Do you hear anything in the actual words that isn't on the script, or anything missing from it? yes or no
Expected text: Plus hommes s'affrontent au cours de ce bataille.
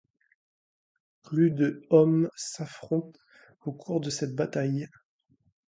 yes